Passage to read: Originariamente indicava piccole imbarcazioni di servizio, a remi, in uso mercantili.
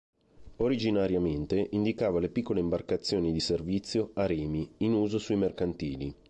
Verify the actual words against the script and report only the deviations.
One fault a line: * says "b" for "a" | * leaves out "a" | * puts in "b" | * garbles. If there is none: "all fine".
* puts in "le"
* puts in "sui"